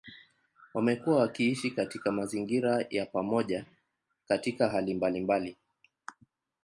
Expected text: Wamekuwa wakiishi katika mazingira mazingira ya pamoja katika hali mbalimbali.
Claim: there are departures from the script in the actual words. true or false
true